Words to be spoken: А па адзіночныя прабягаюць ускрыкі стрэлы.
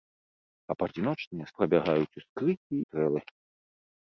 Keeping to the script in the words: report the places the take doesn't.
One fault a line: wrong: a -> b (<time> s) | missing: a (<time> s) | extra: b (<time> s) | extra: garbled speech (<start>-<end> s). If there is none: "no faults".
no faults